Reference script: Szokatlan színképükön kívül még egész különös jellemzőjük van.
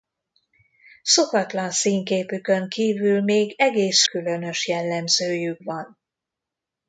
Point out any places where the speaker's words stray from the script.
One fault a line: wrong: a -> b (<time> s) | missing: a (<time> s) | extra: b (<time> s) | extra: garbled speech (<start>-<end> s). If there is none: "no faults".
no faults